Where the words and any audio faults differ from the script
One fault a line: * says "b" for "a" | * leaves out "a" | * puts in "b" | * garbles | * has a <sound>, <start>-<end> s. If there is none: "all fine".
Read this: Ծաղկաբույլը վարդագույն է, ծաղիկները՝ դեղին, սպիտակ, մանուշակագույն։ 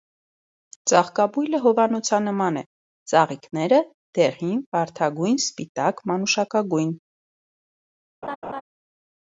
* says "հովանոցանման" for "վարդագույն"
* puts in "վարդագույն"
* has a laugh, 8.2-8.6 s